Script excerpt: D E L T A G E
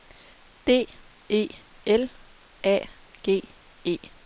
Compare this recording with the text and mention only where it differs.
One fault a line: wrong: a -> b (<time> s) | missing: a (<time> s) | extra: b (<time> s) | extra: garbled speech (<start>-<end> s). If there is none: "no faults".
missing: T (2.1 s)